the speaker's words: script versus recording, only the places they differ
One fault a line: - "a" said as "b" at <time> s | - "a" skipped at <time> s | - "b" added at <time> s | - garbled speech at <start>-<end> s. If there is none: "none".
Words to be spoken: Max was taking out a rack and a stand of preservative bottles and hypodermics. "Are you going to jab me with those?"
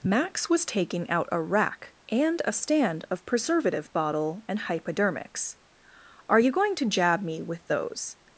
- "bottles" said as "bottle" at 3.9 s